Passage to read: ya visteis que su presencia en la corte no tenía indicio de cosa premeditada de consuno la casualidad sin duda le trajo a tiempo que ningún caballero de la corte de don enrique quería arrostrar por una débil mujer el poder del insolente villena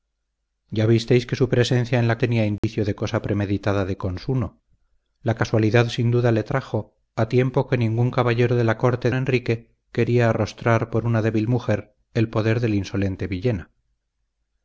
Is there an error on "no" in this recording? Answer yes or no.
yes